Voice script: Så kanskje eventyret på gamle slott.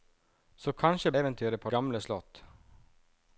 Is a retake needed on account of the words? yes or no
no